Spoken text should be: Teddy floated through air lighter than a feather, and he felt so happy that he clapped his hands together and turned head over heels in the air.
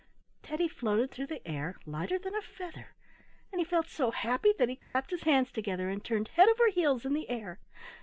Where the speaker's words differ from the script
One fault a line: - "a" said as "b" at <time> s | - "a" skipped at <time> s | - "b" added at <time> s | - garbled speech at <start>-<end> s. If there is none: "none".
- "the" added at 1.3 s